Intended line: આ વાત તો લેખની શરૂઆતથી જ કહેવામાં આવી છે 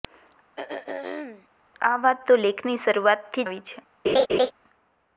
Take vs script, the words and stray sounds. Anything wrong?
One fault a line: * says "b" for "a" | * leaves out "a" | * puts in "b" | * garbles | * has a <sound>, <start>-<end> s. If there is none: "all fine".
* has a throat clearing, 0.6-1.5 s
* leaves out "જ કહેવામાં"
* has a laugh, 4.0-4.5 s